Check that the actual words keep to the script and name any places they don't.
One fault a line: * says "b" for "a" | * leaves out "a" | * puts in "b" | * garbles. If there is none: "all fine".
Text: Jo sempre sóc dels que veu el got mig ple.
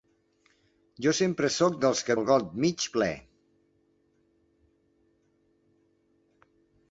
* leaves out "veu"